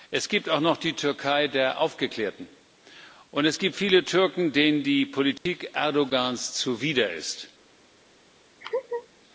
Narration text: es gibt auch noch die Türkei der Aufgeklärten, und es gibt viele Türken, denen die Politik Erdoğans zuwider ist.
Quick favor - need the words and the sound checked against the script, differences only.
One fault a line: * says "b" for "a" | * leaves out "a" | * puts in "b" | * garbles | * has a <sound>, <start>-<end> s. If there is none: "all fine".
* has a dropout, 5.4-5.5 s
* has a laugh, 8.6-9.1 s